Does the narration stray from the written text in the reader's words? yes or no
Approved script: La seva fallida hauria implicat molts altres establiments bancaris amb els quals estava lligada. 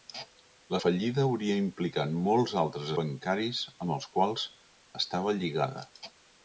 yes